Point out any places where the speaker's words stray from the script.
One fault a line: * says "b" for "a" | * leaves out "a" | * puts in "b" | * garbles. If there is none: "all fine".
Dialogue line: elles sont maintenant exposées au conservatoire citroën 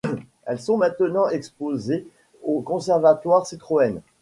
all fine